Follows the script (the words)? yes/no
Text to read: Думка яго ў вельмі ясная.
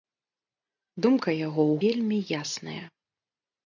yes